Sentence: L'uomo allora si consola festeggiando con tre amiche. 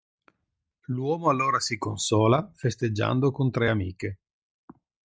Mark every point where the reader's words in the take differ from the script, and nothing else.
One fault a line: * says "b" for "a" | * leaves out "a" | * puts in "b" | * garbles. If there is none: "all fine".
all fine